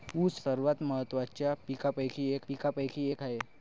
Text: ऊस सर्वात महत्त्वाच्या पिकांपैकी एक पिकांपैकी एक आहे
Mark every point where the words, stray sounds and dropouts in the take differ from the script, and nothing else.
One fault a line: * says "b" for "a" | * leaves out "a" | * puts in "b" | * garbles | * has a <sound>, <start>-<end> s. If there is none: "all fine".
all fine